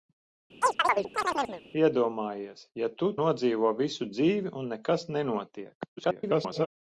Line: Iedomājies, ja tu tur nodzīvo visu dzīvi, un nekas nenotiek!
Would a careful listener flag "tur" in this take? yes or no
yes